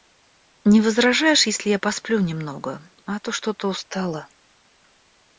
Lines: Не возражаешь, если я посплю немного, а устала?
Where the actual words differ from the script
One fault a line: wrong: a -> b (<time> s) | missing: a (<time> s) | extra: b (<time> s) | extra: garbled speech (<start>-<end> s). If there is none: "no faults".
extra: то что то (3.2 s)